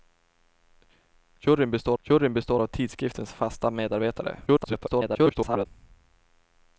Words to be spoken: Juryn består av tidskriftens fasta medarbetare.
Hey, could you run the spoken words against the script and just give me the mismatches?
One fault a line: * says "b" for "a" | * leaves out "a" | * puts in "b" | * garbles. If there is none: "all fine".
* puts in "juryn består"
* garbles